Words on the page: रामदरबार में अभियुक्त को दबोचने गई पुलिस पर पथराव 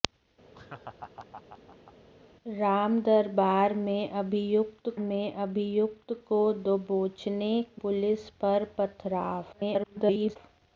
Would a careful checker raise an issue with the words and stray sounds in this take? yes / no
yes